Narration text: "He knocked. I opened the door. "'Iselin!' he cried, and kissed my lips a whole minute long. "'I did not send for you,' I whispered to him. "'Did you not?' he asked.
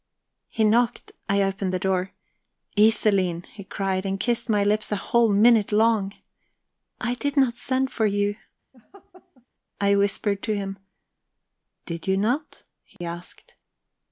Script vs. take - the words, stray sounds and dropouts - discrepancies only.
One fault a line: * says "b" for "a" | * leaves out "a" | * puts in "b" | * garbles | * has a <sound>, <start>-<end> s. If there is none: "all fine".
* has a laugh, 8.7-9.5 s
* has a dropout, 13.0-13.0 s